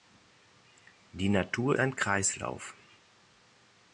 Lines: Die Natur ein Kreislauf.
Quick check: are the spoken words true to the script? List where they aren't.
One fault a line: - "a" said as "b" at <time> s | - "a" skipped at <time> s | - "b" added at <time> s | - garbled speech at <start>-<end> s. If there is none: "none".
none